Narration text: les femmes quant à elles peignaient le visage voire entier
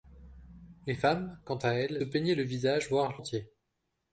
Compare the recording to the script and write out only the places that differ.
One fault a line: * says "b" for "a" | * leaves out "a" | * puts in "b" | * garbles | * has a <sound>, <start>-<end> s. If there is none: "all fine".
all fine